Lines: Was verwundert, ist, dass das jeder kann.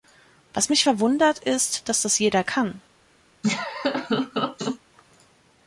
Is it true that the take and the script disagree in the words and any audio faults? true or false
true